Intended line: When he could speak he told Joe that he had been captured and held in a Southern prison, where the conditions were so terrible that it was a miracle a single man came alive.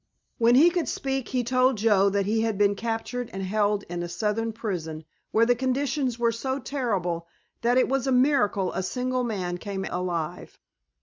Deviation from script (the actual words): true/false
false